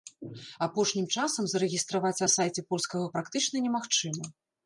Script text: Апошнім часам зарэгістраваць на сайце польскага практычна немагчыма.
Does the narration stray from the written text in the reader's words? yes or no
no